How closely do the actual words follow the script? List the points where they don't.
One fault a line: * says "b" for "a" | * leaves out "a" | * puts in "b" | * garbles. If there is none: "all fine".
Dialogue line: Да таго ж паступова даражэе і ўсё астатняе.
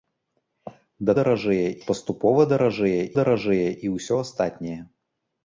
* says "даражэе" for "таго"
* puts in "даражэе"